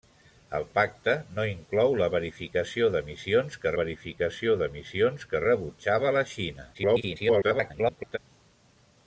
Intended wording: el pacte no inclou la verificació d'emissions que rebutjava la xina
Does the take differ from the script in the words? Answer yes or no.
yes